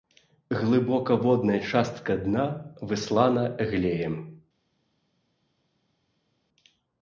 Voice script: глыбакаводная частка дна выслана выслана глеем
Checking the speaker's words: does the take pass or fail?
fail